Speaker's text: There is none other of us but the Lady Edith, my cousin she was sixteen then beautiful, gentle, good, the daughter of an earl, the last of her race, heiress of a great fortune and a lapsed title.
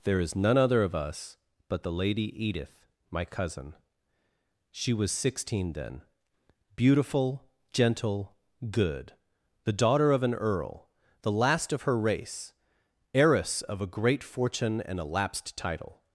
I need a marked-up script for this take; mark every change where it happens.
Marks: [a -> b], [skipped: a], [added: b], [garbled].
There is none other of us but the Lady Edith, my cousin she was sixteen then beautiful, gentle, good, the daughter of an earl, the last of her race, heiress of a great fortune and a lapsed title.